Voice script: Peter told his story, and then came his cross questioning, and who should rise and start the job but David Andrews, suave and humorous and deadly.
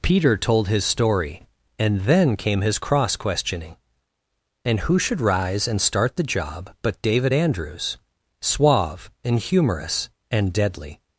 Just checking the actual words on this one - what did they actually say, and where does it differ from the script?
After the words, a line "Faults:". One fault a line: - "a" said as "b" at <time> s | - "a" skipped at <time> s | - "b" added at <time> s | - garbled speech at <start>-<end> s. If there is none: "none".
Peter told his story, and then came his cross questioning, and who should rise and start the job but David Andrews, suave and humorous and deadly.
Faults:
none